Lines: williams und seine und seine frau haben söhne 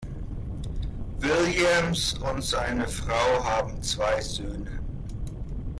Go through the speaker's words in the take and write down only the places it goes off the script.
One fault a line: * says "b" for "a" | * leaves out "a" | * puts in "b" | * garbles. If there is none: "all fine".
* leaves out "und seine"
* puts in "zwei"